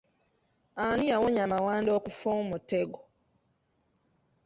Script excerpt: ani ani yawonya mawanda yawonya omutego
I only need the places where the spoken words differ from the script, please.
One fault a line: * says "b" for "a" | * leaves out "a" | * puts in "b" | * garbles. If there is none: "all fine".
* leaves out "ani"
* says "okufa" for "yawonya"